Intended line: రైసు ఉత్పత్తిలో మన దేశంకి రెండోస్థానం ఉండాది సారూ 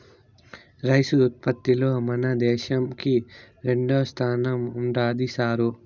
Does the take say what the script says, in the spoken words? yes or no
yes